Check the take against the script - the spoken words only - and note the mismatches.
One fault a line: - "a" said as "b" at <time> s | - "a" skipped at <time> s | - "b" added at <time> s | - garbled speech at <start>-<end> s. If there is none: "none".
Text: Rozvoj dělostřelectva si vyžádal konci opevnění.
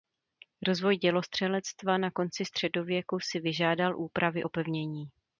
- "na konci středověku" added at 2.0 s
- "konci" said as "úpravy" at 4.0 s